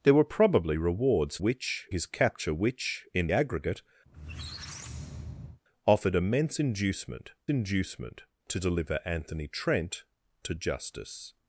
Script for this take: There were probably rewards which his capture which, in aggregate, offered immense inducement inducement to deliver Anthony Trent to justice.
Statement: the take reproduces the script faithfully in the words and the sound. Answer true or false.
false